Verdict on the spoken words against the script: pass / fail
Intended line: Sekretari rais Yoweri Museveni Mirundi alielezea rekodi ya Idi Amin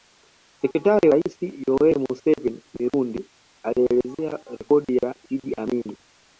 pass